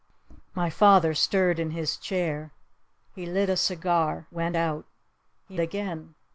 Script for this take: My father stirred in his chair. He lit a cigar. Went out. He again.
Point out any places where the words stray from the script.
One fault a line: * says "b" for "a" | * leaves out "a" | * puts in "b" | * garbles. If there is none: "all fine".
all fine